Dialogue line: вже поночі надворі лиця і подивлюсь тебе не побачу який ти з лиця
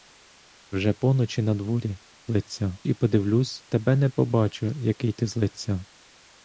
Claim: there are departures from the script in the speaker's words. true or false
false